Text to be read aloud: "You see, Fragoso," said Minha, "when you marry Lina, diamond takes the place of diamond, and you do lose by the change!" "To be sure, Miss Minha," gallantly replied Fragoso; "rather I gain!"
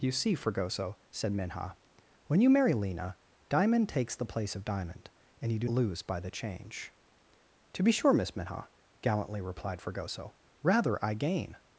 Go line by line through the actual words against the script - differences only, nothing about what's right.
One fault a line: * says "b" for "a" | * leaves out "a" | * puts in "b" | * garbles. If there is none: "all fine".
all fine